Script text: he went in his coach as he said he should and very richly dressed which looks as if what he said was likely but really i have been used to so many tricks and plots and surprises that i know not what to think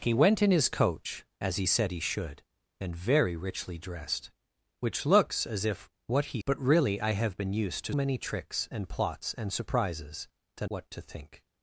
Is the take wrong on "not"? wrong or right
wrong